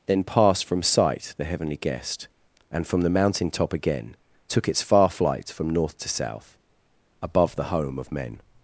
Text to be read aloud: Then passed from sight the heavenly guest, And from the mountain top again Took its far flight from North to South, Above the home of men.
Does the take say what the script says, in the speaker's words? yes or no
yes